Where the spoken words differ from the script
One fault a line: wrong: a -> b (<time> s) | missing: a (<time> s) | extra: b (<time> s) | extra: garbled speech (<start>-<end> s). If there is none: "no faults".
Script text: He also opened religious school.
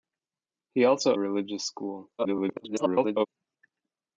missing: opened (1.1 s)
extra: garbled speech (2.2-3.3 s)